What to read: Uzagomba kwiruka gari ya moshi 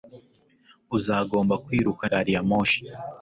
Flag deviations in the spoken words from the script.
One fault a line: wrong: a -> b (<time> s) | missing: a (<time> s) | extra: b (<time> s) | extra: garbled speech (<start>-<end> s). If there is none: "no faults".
no faults